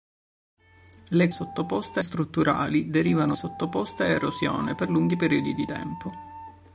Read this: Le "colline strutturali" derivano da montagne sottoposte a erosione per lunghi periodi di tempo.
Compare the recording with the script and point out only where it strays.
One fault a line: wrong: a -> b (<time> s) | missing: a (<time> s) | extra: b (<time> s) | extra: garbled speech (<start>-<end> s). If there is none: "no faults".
wrong: colline -> sottoposte (1.3 s)
missing: da montagne (3.3 s)